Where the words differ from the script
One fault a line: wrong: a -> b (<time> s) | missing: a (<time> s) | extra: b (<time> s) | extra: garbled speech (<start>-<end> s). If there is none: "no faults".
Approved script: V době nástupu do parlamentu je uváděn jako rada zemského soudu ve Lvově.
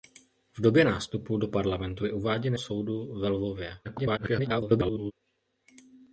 missing: jako rada zemského (2.5 s)
extra: garbled speech (3.8-5.1 s)